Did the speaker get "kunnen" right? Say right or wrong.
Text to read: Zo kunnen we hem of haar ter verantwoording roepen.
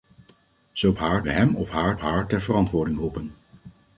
wrong